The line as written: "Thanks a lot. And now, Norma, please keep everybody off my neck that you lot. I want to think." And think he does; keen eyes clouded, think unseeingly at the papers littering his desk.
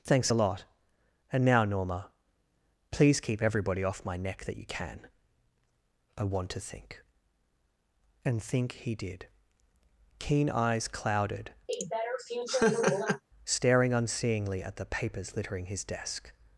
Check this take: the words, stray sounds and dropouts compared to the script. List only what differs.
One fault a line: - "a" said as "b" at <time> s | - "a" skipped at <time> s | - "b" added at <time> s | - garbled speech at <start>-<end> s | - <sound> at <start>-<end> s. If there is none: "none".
- "lot" said as "can" at 4.6 s
- "does" said as "did" at 8.9 s
- laugh at 11.7-13.2 s
- "think" said as "staring" at 13.5 s